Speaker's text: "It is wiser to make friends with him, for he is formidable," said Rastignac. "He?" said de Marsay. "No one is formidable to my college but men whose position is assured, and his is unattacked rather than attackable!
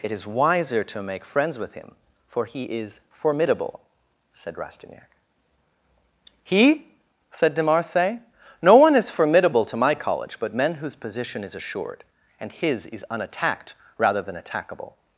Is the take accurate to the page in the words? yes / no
yes